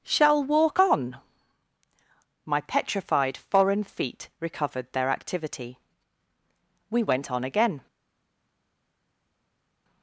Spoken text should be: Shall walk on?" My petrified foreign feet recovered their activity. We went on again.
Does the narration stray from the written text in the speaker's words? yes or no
no